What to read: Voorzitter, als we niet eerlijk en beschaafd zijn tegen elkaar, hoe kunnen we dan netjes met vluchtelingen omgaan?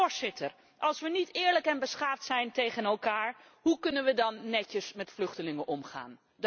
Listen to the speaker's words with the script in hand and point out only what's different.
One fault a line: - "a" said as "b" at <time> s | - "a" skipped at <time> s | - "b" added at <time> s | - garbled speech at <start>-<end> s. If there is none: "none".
none